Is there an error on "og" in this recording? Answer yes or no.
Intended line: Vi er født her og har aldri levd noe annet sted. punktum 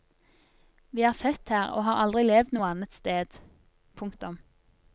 no